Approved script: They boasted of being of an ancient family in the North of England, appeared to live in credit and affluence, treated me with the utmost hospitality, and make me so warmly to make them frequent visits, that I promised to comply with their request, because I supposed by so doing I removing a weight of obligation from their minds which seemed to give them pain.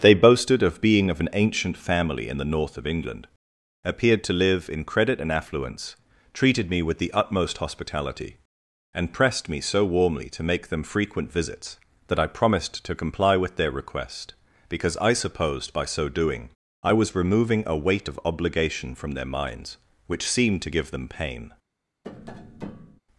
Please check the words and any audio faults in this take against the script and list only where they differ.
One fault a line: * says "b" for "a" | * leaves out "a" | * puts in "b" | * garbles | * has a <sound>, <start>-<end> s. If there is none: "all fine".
* says "pressed" for "make"
* puts in "was"
* has a tap, 22.0-23.0 s